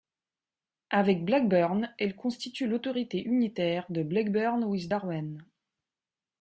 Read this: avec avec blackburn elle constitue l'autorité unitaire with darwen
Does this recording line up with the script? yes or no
no